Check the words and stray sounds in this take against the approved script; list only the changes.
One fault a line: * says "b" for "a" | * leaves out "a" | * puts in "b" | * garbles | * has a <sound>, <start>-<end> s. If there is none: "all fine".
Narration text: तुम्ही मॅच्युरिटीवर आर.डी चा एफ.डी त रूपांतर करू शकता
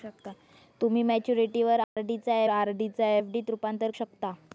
* has a dropout, 1.8-2.0 s
* puts in "आर.डी चा"
* leaves out "करू"